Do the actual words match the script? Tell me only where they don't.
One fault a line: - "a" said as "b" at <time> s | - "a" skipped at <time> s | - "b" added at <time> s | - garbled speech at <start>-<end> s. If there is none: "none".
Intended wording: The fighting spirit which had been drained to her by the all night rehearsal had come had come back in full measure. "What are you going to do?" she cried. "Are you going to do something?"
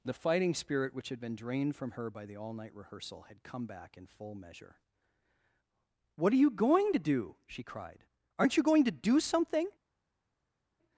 - "to" said as "from" at 1.8 s
- "had come" skipped at 3.7 s
- "Are" said as "Aren't" at 8.4 s